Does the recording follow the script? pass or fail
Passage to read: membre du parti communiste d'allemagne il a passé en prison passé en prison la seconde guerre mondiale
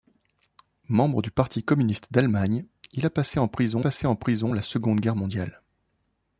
pass